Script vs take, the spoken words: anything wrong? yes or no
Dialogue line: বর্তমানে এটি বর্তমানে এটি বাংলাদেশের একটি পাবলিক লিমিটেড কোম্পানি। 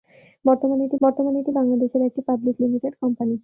no